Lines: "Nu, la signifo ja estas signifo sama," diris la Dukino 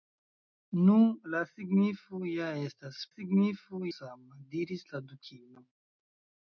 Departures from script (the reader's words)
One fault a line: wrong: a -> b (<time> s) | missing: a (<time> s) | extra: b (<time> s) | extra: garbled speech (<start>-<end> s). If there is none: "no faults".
no faults